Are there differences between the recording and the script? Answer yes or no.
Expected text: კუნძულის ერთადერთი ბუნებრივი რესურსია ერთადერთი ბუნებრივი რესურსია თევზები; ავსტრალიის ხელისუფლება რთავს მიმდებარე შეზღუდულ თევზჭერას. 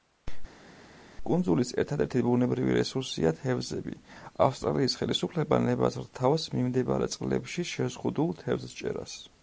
yes